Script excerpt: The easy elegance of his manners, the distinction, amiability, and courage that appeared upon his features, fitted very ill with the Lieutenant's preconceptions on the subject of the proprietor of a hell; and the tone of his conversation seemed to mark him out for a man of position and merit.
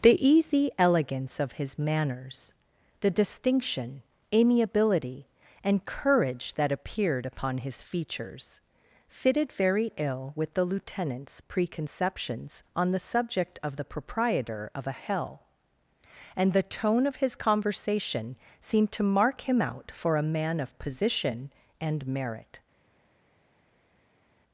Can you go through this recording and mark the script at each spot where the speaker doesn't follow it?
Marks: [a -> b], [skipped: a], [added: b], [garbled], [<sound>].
The easy elegance of his manners, the distinction, amiability, and courage that appeared upon his features, fitted very ill with the Lieutenant's preconceptions on the subject of the proprietor of a hell; and the tone of his conversation seemed to mark him out for a man of position and merit.